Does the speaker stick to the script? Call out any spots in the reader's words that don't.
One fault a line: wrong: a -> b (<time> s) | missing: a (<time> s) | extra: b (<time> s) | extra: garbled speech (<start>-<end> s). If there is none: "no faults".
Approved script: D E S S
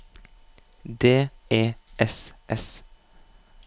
no faults